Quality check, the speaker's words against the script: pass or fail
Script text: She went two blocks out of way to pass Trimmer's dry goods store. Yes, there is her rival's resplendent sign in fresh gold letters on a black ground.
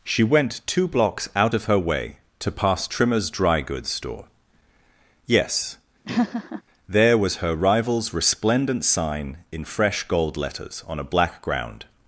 fail